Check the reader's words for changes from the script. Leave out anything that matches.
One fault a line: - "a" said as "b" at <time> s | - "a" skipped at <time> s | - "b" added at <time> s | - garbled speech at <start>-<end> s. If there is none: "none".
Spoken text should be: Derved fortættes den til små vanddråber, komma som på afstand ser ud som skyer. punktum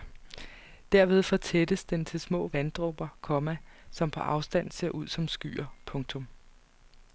none